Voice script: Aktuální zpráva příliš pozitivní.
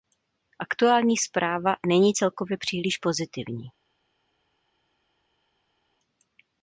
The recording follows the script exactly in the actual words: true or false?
false